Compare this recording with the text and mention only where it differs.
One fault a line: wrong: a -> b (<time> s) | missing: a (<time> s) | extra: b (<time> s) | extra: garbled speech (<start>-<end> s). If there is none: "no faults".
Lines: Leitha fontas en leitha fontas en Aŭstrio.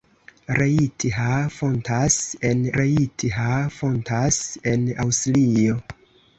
no faults